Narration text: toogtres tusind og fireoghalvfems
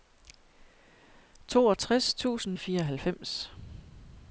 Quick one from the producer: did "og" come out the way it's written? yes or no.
yes